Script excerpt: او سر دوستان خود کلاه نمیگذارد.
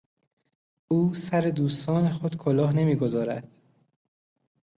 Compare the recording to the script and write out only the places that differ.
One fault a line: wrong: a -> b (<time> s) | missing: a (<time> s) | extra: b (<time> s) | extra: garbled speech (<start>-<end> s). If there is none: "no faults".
no faults